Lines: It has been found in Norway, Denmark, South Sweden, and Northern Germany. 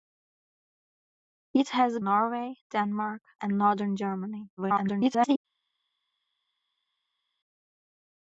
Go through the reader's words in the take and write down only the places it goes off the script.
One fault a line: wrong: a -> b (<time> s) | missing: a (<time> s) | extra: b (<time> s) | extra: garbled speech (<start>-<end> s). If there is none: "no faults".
missing: been found in (2.0 s)
missing: South Sweden (3.2 s)
extra: garbled speech (4.6-5.4 s)